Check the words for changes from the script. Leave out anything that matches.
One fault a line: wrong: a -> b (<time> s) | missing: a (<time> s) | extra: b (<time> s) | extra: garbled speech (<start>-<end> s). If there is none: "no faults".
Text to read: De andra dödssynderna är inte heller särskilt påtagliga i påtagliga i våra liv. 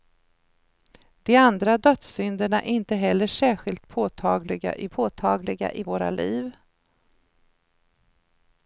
no faults